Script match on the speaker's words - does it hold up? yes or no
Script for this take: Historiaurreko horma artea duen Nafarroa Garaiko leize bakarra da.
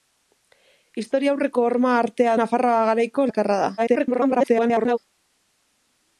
no